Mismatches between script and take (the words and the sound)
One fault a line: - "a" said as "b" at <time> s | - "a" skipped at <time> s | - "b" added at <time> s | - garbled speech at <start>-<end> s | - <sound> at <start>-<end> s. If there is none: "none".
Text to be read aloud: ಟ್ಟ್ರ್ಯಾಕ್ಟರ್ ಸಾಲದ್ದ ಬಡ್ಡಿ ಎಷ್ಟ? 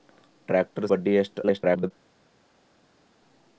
- "ಸಾಲದ್ದ" skipped at 0.9 s
- garbled speech at 1.4-1.9 s